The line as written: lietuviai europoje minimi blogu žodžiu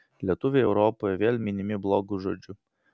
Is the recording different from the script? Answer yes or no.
yes